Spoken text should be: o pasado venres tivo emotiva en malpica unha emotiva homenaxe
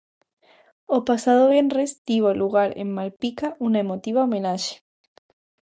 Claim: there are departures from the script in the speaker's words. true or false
true